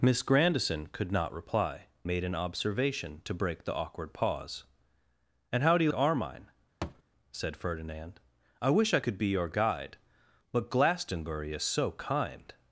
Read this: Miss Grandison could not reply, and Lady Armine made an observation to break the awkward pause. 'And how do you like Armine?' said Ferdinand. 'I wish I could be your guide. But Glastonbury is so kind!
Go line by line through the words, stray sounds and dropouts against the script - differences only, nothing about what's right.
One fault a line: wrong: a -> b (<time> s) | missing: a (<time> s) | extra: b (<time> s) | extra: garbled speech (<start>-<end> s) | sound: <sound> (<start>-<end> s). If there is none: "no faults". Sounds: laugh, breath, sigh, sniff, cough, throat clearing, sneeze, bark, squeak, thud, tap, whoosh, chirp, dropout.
missing: and Lady Armine (1.9 s)
missing: like (5.9 s)
sound: thud (6.8-7.0 s)